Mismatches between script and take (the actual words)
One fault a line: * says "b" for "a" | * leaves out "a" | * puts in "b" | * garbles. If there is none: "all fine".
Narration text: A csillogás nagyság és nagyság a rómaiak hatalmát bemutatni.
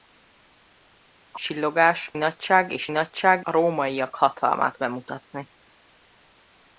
all fine